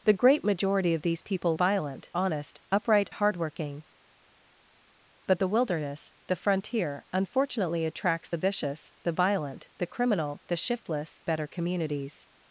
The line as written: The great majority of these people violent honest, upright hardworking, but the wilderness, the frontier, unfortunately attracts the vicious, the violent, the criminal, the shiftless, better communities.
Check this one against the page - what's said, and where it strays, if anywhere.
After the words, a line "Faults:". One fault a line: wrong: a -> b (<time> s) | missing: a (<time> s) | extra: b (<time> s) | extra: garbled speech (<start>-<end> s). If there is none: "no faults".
The great majority of these people violent honest, upright hardworking, but the wilderness, the frontier, unfortunately attracts the vicious, the violent, the criminal, the shiftless, better communities.
Faults:
no faults